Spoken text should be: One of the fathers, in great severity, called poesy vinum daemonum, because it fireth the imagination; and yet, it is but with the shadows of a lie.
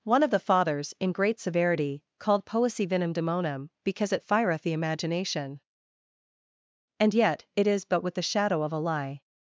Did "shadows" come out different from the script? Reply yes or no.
yes